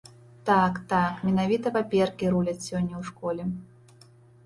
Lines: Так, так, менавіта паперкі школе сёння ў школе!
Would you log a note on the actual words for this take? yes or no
yes